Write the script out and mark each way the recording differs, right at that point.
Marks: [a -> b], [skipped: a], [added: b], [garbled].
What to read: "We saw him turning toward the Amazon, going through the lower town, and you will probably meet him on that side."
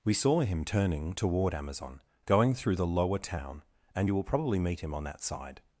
"We saw him turning toward [skipped: the] Amazon, going through the lower town, and you will probably meet him on that side."